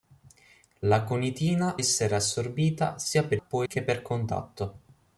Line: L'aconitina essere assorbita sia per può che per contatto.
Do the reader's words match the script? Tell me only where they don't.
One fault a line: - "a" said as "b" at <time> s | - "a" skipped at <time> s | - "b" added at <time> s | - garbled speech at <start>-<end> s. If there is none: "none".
none